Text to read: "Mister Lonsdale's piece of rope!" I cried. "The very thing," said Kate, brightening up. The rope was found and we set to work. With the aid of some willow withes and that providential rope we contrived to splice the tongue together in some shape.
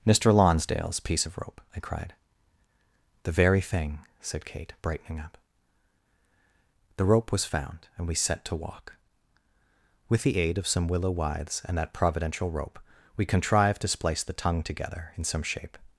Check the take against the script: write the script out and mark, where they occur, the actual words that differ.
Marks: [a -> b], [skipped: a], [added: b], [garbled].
"Mister Lonsdale's piece of rope!" I cried. "The very thing," said Kate, brightening up. The rope was found and we set to [work. -> walk] With the aid of some willow withes and that providential rope we contrived to splice the tongue together in some shape.